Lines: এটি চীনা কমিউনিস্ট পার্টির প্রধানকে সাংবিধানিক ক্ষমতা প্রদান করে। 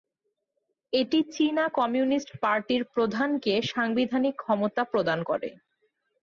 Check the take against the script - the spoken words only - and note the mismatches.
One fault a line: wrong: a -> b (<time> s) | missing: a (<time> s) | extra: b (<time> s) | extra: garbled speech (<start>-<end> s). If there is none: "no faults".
no faults